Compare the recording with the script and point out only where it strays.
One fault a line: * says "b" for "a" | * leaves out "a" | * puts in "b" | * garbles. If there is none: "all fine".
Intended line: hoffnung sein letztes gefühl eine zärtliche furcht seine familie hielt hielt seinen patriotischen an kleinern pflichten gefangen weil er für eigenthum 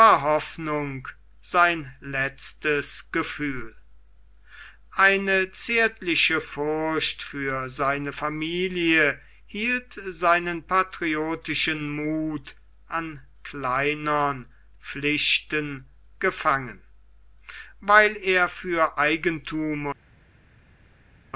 * puts in "für"
* leaves out "hielt"
* puts in "muth"